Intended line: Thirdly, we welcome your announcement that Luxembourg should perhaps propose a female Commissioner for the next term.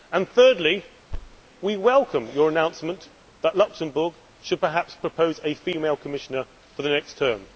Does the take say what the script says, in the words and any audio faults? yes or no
no